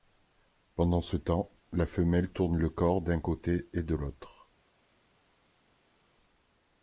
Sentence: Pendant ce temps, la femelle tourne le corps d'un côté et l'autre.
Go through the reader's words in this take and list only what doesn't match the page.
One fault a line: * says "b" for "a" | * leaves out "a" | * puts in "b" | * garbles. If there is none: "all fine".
* puts in "de"